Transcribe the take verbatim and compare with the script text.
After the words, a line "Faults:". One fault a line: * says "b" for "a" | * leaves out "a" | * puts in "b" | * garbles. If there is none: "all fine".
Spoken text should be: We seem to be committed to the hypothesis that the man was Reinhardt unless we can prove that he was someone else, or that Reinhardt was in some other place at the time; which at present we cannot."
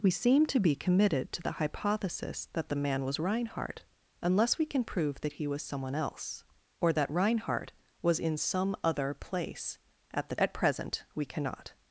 We seem to be committed to the hypothesis that the man was Reinhardt unless we can prove that he was someone else, or that Reinhardt was in some other place at the at present we cannot."
Faults:
* leaves out "time which"